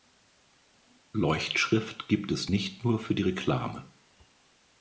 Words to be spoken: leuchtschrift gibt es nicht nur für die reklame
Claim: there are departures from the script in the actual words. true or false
false